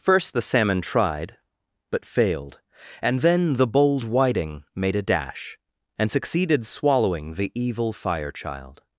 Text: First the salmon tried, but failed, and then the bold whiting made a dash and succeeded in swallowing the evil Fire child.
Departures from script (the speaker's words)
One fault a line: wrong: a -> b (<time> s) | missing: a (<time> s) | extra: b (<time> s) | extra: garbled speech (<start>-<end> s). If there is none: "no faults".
missing: in (6.7 s)